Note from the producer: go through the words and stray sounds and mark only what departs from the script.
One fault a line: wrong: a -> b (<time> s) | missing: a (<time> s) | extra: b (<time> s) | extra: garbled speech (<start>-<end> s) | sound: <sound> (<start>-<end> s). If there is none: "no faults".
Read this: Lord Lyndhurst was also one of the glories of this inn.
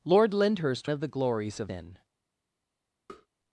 missing: was also one (0.9 s)
missing: this (1.7 s)
sound: tap (3.1-3.3 s)